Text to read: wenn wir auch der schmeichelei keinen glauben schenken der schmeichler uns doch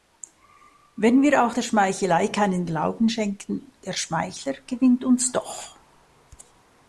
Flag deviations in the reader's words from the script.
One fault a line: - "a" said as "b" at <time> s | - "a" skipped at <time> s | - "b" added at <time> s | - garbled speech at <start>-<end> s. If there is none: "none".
- "gewinnt" added at 4.6 s